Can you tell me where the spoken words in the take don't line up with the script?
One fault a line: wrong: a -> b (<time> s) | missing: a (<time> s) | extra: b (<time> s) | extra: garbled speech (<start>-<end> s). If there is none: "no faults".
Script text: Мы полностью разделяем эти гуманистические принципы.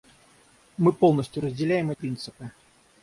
missing: эти гуманистические (1.9 s)